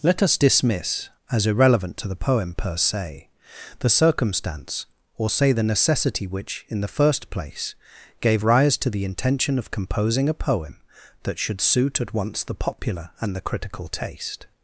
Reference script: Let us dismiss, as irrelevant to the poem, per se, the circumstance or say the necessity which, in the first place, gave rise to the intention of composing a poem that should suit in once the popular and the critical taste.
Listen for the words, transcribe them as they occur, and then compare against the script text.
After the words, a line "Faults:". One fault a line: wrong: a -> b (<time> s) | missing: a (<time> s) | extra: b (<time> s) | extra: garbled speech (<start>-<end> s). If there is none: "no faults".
Let us dismiss, as irrelevant to the poem, per se, the circumstance or say the necessity which, in the first place, gave rise to the intention of composing a poem that should suit at once the popular and the critical taste.
Faults:
wrong: in -> at (12.0 s)